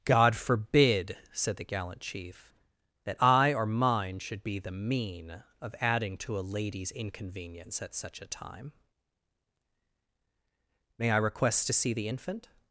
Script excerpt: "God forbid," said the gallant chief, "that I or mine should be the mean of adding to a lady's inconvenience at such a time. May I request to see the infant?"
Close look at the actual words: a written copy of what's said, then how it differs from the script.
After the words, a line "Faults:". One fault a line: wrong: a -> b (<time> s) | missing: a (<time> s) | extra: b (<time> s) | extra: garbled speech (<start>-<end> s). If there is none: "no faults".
"God forbid," said the gallant chief, "that I or mine should be the mean of adding to a lady's inconvenience at such a time. May I request to see the infant?"
Faults:
no faults